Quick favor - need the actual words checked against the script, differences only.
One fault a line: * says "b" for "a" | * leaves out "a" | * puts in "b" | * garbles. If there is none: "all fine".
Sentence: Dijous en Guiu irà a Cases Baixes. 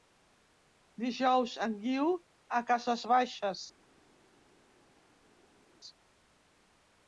* leaves out "irà"